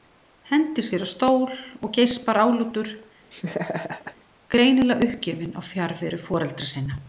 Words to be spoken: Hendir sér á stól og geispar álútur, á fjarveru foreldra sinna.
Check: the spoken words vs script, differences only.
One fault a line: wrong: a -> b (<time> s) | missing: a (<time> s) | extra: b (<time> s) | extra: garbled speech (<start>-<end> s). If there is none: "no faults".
extra: greinilega uppgefinn (4.5 s)